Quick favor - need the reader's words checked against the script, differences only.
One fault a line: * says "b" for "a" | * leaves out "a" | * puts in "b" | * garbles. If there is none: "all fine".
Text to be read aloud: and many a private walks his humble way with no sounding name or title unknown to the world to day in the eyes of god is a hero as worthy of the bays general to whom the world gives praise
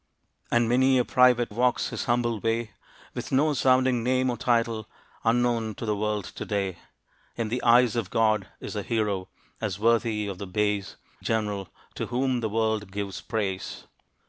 all fine